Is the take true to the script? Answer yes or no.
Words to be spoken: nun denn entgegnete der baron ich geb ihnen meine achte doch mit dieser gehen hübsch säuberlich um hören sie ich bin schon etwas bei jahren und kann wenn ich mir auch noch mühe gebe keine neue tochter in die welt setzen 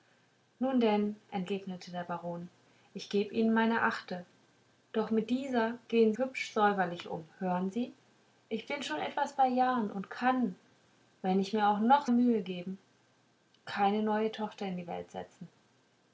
yes